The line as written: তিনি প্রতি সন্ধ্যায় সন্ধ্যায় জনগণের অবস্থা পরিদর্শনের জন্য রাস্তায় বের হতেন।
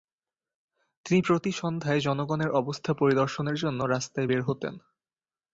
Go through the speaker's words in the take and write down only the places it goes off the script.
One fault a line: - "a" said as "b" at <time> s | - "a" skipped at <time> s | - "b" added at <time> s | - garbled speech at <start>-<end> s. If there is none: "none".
- "সন্ধ্যায়" skipped at 2.0 s